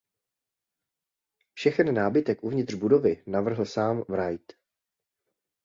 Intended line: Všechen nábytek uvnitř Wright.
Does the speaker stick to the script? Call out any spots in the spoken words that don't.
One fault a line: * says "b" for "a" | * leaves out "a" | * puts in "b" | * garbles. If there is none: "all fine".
* puts in "budovy navrhl sám"